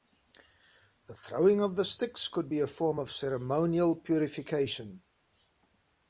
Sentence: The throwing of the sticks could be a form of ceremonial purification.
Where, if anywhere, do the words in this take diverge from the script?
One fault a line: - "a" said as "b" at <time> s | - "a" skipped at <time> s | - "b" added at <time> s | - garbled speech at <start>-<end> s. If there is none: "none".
none